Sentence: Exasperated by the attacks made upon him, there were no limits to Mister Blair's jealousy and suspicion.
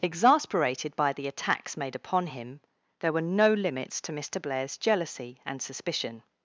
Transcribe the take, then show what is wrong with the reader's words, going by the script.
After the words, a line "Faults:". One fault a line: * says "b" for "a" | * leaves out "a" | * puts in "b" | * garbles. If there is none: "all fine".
Exasperated by the attacks made upon him, there were no limits to Mister Blair's jealousy and suspicion.
Faults:
all fine